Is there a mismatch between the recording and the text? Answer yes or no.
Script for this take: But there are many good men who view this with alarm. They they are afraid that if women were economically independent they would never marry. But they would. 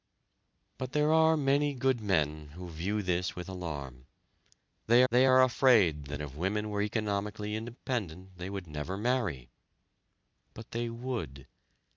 no